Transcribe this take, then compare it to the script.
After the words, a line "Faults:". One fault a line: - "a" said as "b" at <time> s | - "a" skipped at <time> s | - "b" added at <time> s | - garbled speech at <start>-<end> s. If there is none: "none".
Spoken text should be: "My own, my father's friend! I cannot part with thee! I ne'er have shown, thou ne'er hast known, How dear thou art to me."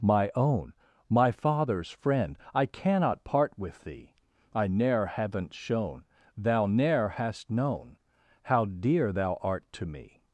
"My own, my father's friend! I cannot part with thee! I ne'er haven't shown, thou ne'er hast known, How dear thou art to me."
Faults:
- "have" said as "haven't" at 5.1 s